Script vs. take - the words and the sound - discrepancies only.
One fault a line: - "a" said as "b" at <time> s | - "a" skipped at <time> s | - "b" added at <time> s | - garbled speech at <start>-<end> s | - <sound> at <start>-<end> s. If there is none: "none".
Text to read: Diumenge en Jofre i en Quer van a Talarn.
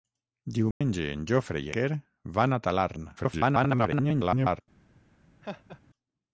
- dropout at 0.7-0.8 s
- "en" skipped at 1.7 s
- garbled speech at 3.2-4.6 s
- laugh at 5.4-5.8 s